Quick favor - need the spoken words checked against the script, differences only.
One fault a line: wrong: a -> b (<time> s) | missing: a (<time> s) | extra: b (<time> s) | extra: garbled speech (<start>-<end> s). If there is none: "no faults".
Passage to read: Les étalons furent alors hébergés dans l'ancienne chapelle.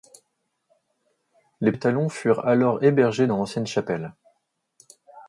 no faults